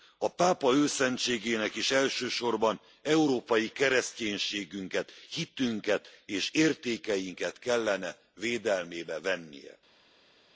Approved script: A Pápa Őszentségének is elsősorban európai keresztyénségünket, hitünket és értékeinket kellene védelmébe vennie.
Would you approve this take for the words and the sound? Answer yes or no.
yes